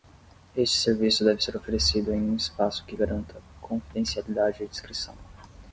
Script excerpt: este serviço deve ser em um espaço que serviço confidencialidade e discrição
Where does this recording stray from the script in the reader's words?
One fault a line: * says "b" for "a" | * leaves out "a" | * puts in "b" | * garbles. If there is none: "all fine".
* puts in "oferecido"
* says "garanta" for "serviço"